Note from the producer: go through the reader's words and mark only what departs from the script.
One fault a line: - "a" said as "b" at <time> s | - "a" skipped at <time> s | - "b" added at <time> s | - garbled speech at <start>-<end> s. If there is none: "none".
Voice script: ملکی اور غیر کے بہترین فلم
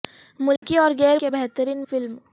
none